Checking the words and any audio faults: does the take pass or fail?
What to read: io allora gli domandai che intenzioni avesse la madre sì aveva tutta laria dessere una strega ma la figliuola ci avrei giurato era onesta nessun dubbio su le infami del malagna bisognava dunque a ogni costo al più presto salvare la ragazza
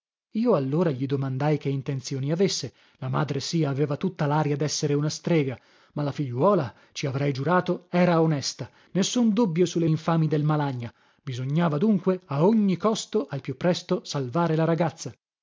pass